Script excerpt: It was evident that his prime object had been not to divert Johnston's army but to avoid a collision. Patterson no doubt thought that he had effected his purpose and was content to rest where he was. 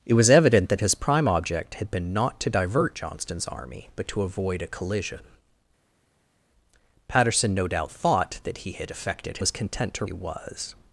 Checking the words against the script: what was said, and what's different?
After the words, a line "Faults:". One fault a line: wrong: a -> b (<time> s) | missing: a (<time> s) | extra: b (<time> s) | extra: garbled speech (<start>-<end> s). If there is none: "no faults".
It was evident that his prime object had been not to divert Johnston's army but to avoid a collision. Patterson no doubt thought that he had effected was content to he was.
Faults:
missing: his purpose and (9.4 s)
missing: rest where (10.0 s)